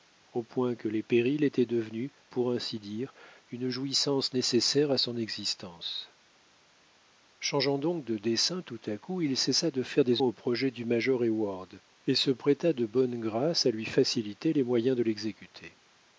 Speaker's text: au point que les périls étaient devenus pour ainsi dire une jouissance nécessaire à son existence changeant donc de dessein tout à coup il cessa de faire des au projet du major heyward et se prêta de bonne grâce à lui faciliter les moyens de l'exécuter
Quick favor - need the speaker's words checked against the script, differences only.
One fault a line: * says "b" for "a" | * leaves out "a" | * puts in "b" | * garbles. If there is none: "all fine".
all fine